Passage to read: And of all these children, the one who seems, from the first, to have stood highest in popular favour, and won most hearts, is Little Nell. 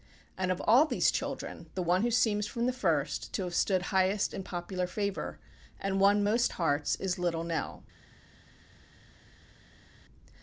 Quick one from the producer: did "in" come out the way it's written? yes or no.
yes